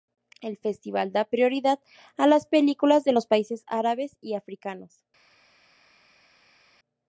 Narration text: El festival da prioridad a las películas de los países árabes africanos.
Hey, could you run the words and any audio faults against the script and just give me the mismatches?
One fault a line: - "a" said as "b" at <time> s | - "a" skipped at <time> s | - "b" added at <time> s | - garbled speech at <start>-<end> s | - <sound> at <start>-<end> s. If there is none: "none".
- "y" added at 4.2 s